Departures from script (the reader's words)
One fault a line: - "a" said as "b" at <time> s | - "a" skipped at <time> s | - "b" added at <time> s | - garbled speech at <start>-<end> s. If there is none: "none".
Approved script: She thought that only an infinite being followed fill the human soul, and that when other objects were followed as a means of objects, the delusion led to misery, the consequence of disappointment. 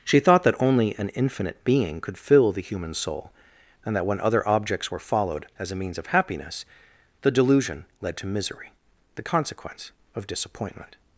- "followed" said as "could" at 2.0 s
- "objects" said as "happiness" at 6.1 s